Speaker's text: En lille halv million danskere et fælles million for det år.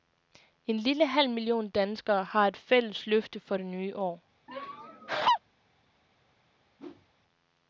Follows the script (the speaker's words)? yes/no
no